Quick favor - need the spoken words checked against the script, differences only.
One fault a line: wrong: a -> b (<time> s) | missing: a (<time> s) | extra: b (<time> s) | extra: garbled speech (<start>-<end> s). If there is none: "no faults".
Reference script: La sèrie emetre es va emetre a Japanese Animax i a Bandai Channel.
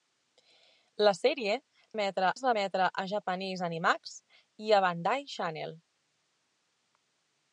no faults